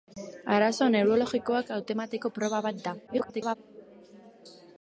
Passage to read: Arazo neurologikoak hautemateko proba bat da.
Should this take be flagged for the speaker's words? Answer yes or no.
yes